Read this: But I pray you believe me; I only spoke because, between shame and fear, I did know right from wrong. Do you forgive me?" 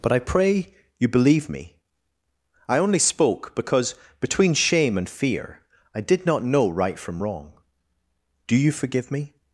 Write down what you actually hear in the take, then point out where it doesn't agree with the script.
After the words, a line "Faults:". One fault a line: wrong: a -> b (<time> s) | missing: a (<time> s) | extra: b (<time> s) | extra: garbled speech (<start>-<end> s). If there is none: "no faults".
But I pray you believe me; I only spoke because, between shame and fear, I did not know right from wrong. Do you forgive me?"
Faults:
extra: not (6.2 s)